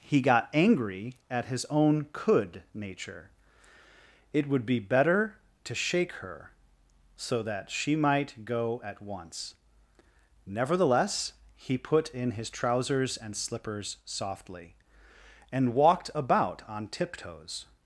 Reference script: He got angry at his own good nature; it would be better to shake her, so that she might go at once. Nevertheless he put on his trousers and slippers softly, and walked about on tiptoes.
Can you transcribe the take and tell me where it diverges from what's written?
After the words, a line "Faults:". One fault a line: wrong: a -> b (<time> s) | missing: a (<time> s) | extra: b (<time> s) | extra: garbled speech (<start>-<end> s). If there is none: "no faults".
He got angry at his own could nature; it would be better to shake her, so that she might go at once. Nevertheless he put in his trousers and slippers softly, and walked about on tiptoes.
Faults:
wrong: good -> could (2.1 s)
wrong: on -> in (12.1 s)